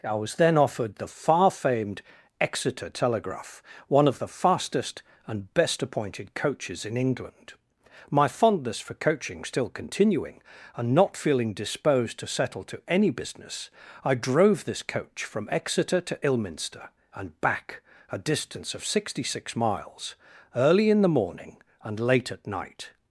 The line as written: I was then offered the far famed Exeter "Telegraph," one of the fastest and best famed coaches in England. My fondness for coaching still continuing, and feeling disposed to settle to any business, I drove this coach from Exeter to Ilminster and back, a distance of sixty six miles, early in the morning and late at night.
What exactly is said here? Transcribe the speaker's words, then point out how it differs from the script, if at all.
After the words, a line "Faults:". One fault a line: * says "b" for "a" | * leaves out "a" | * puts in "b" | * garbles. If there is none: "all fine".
I was then offered the far famed Exeter "Telegraph," one of the fastest and best appointed coaches in England. My fondness for coaching still continuing, and not feeling disposed to settle to any business, I drove this coach from Exeter to Ilminster and back, a distance of sixty six miles, early in the morning and late at night.
Faults:
* says "appointed" for "famed"
* puts in "not"